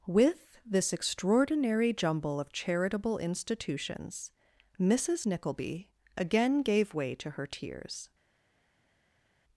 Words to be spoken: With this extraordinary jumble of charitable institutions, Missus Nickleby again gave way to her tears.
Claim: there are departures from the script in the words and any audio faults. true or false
false